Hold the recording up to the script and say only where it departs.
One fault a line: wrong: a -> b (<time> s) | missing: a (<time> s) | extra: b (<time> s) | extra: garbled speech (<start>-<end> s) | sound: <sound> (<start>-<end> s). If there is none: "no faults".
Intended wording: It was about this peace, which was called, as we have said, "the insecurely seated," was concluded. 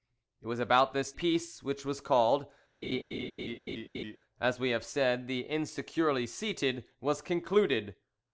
sound: laugh (2.8-4.2 s)